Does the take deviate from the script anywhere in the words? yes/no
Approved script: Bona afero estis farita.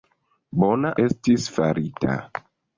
yes